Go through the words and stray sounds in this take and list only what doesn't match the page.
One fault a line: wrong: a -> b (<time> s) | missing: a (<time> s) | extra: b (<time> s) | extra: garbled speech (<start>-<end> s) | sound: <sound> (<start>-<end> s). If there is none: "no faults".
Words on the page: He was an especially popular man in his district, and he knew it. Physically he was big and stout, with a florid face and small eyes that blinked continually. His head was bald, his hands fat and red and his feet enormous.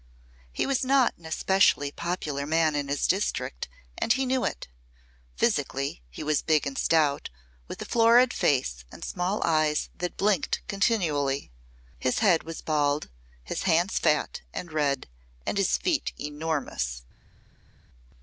extra: not (0.8 s)